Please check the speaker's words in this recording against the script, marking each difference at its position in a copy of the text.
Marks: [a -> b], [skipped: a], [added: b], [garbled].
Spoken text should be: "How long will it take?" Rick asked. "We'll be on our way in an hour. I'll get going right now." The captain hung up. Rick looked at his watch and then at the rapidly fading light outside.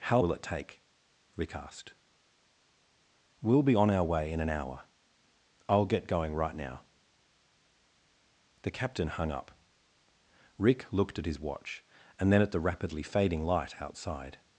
"How [skipped: long] will it take?" Rick asked. "We'll be on our way in an hour. I'll get going right now." The captain hung up. Rick looked at his watch and then at the rapidly fading light outside.